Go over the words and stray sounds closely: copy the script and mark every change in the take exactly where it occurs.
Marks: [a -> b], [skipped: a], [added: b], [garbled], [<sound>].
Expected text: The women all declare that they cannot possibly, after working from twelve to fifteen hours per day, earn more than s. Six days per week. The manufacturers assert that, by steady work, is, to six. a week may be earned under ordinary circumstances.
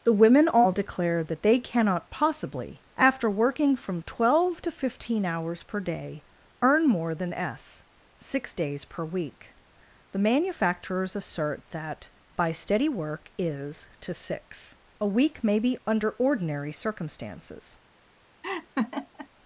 The women all declare that they cannot possibly, after working from twelve to fifteen hours per day, earn more than s. Six days per week. The manufacturers assert that, by steady work, is, to six. a week may be [skipped: earned] under ordinary circumstances. [laugh]